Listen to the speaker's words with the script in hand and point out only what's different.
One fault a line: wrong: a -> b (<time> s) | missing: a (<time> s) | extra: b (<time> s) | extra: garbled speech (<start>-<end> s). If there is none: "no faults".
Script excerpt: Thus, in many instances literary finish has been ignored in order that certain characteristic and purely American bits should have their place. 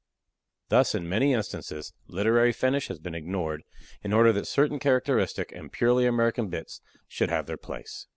no faults